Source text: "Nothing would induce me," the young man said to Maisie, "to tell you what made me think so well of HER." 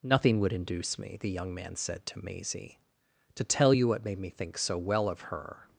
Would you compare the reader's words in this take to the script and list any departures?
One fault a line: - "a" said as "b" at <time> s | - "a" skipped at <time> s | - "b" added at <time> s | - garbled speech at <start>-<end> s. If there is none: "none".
none